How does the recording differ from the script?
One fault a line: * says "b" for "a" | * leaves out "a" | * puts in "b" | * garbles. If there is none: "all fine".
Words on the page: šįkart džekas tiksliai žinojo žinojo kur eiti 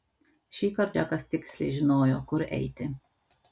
* leaves out "žinojo"